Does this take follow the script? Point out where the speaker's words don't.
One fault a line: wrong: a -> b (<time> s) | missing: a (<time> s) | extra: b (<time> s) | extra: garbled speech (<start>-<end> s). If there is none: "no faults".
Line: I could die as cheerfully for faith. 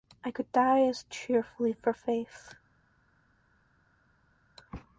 no faults